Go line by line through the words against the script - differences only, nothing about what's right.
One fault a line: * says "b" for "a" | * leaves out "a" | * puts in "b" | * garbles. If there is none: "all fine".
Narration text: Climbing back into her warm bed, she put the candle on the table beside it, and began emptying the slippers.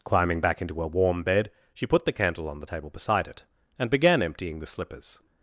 all fine